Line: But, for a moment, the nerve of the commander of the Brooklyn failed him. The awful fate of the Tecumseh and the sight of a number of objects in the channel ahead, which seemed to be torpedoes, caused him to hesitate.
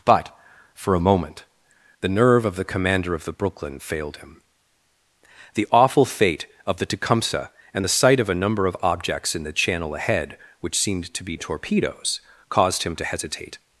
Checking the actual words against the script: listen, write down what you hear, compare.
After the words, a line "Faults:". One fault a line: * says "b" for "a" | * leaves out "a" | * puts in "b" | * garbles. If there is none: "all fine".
But, for a moment, the nerve of the commander of the Brooklyn failed him. The awful fate of the Tecumseh and the sight of a number of objects in the channel ahead, which seemed to be torpedoes, caused him to hesitate.
Faults:
all fine